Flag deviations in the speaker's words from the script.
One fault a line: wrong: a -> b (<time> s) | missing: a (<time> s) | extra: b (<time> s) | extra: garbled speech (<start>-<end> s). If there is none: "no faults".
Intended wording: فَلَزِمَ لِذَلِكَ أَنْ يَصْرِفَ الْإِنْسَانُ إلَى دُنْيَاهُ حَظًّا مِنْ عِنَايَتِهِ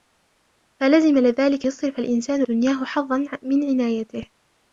missing: أَنْ (1.7 s)
missing: إلَى (2.4 s)